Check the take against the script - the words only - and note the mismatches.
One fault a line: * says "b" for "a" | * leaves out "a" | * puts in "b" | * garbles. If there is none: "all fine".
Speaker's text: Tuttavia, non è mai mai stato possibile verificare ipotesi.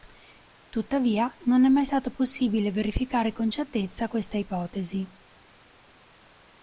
* leaves out "mai"
* puts in "con certezza questa"